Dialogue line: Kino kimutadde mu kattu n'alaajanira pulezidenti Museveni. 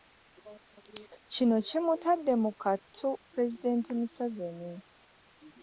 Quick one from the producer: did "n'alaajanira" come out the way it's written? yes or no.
no